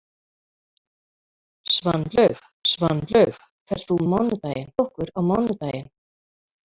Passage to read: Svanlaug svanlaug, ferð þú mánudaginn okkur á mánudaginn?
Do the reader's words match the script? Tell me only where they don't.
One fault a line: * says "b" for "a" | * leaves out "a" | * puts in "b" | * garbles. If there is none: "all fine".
all fine